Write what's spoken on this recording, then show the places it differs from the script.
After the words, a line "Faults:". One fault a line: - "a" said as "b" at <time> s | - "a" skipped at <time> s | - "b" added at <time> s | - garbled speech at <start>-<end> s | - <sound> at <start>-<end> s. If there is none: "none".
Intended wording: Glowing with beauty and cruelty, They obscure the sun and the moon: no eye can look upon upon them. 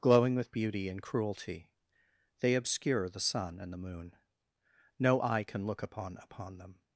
Glowing with beauty and cruelty, They obscure the sun and the moon: no eye can look upon upon them.
Faults:
none